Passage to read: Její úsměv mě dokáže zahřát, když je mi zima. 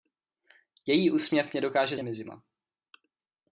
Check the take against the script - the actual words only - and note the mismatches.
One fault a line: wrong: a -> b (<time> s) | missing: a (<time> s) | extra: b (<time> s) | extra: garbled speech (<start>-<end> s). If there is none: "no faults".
missing: zahřát když (2.0 s)